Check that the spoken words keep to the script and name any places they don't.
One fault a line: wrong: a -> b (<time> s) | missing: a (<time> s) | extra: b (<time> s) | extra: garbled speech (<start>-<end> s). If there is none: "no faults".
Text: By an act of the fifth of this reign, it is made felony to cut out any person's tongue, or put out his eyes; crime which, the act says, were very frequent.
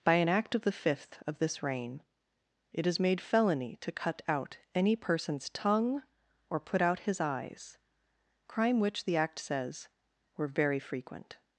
no faults